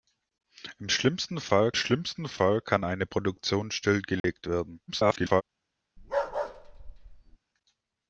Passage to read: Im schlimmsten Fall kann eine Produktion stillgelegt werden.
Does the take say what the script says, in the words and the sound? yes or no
no